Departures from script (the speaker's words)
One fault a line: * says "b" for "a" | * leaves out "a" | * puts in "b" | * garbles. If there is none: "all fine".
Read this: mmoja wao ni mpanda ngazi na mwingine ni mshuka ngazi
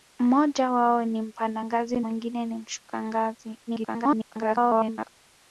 * leaves out "na"
* garbles